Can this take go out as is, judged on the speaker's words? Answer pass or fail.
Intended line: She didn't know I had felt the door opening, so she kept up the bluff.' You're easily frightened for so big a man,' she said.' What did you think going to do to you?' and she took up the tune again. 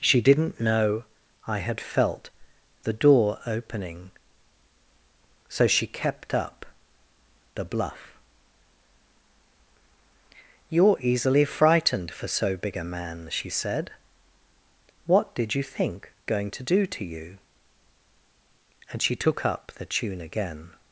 pass